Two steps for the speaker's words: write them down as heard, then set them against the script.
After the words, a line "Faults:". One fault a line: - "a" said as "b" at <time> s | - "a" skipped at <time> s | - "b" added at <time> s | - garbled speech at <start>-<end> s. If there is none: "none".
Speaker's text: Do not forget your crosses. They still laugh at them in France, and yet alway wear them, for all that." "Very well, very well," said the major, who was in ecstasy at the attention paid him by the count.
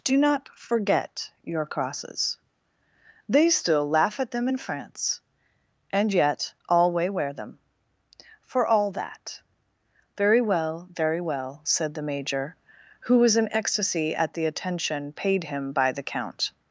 Do not forget your crosses. They still laugh at them in France, and yet alway wear them, for all that." "Very well, very well," said the major, who was in ecstasy at the attention paid him by the count.
Faults:
none